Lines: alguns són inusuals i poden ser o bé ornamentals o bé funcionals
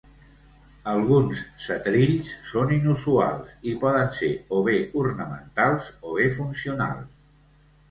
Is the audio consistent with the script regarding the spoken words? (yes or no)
no